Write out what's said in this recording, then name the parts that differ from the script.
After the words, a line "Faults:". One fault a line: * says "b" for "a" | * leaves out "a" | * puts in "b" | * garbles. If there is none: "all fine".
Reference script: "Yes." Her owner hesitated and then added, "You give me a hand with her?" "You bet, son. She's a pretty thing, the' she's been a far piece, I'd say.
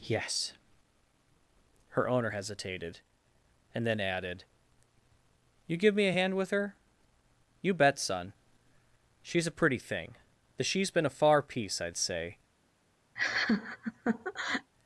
"Yes." Her owner hesitated and then added, "You give me a hand with her?" "You bet, son. She's a pretty thing, the' she's been a far piece, I'd say.
Faults:
all fine